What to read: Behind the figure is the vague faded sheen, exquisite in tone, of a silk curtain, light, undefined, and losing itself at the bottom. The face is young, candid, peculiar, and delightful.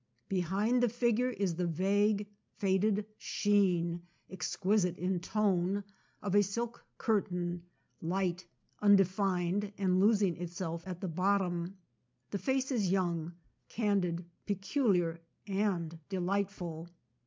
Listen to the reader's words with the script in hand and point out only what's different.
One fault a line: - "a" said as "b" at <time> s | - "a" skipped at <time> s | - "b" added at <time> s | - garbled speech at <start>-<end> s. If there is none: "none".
none